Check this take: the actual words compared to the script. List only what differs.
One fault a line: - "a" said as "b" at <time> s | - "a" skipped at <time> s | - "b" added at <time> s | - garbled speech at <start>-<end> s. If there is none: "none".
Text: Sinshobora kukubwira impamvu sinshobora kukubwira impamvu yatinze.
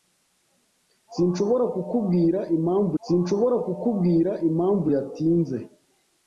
none